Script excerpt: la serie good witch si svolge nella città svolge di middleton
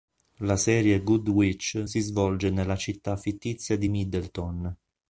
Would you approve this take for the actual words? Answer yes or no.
no